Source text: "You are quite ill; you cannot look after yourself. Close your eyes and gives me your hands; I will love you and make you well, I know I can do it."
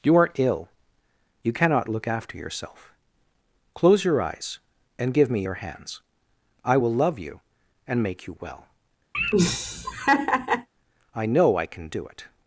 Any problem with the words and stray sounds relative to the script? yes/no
yes